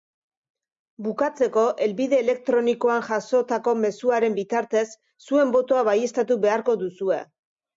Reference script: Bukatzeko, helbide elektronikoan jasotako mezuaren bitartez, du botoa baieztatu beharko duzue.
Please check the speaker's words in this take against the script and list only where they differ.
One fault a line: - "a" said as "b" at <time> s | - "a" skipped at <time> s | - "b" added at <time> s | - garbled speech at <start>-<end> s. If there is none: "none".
- "du" said as "zuen" at 5.3 s